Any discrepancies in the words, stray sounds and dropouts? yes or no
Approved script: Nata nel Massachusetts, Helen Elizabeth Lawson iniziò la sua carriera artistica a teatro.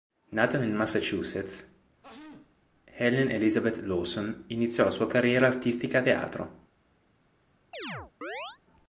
yes